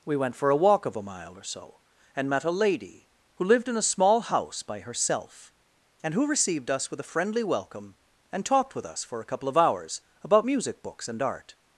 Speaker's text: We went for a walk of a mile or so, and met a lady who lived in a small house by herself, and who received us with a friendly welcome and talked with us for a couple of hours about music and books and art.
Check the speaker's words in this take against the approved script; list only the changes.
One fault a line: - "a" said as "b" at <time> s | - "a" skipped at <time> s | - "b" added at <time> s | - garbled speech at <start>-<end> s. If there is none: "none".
- "and" skipped at 10.8 s